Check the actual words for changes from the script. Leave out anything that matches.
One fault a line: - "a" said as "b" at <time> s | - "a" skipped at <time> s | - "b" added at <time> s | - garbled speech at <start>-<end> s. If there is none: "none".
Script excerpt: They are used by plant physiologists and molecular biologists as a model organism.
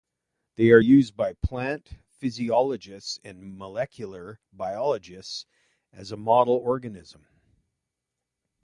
none